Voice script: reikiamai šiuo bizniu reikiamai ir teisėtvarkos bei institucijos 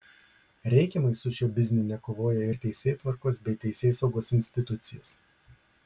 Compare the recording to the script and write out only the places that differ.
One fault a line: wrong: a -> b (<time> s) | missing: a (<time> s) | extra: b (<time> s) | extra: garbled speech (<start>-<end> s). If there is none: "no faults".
extra: su (1.2 s)
wrong: reikiamai -> nekovoja (1.9 s)
extra: teisėsaugos (3.7 s)